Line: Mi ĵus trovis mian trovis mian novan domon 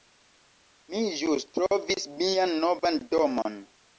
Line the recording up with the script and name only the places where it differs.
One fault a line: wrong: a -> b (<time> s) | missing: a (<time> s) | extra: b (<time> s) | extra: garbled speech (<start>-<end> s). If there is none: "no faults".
missing: trovis mian (2.6 s)